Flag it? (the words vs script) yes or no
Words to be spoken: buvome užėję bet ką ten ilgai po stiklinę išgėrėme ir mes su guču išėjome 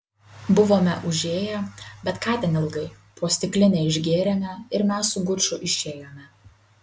no